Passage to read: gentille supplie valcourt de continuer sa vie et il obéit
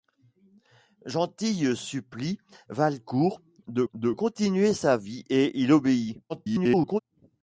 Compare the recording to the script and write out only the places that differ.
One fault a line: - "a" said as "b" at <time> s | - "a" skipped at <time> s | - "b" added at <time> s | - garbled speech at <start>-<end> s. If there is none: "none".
- "de" added at 3.9 s
- garbled speech at 6.3-7.0 s